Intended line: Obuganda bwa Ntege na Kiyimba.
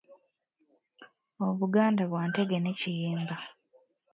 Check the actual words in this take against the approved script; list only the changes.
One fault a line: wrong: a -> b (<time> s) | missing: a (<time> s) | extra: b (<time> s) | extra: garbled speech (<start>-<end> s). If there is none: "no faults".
wrong: na -> ne (2.6 s)